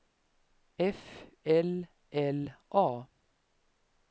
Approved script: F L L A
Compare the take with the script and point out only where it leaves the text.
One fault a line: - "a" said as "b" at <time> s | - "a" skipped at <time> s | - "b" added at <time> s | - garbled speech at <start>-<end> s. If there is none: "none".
none